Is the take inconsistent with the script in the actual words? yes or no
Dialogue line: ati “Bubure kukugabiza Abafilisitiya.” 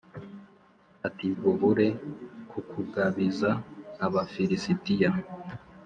no